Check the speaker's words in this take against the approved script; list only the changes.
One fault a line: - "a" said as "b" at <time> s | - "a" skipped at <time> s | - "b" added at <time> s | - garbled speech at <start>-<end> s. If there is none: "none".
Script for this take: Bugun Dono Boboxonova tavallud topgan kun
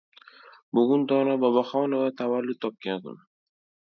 none